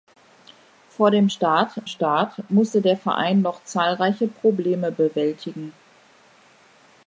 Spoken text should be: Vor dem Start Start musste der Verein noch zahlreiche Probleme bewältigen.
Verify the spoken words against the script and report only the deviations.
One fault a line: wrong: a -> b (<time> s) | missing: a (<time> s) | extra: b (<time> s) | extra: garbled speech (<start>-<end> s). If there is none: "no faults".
no faults